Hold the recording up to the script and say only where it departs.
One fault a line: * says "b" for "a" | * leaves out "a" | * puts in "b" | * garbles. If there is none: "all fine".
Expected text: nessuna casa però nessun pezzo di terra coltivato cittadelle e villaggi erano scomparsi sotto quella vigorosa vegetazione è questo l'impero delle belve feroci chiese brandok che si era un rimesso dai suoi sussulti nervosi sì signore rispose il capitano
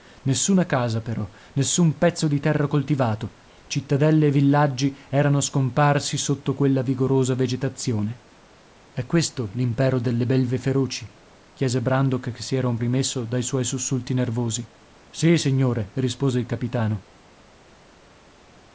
all fine